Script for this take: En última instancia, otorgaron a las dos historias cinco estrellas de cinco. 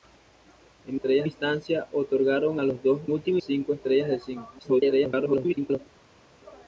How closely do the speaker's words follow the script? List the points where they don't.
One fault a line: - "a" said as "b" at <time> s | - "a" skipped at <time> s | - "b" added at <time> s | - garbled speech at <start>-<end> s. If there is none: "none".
- "última" said as "estrellas" at 0.9 s
- "historias" said as "última" at 3.1 s
- garbled speech at 4.6-5.8 s